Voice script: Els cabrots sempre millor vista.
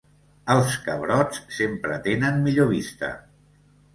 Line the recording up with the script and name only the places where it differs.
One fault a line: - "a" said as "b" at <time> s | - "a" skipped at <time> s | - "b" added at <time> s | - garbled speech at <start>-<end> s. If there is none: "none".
- "tenen" added at 2.1 s